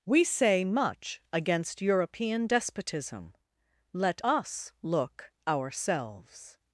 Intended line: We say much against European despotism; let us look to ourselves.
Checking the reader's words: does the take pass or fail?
fail